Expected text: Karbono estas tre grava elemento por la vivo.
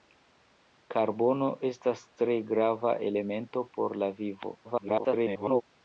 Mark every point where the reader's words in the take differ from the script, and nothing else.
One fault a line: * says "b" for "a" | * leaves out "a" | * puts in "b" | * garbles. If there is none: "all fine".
* garbles